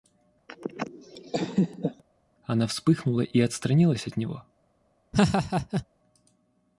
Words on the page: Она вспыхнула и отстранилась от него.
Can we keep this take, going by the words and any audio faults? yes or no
no